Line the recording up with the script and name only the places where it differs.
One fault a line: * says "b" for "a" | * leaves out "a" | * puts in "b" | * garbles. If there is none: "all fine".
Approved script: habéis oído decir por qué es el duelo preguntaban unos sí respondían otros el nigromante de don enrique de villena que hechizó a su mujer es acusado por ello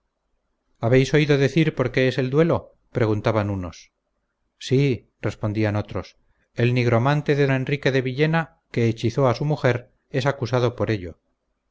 * leaves out "don"